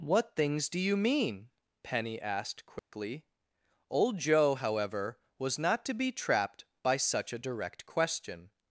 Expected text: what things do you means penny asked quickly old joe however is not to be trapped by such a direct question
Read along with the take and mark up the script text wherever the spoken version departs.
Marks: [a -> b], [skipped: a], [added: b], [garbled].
what things do you [means -> mean] penny asked quickly old joe however [is -> was] not to be trapped by such a direct question